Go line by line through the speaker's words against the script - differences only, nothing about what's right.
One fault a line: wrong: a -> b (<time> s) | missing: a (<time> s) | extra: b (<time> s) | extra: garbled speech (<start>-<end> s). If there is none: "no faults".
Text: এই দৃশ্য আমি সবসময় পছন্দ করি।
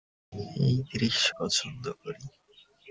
missing: আমি সবসময় (1.3 s)